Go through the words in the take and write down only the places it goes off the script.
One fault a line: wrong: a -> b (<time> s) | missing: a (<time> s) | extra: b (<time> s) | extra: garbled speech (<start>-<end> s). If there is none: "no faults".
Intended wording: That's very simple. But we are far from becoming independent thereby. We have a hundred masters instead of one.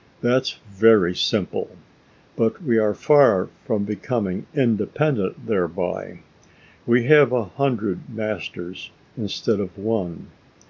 no faults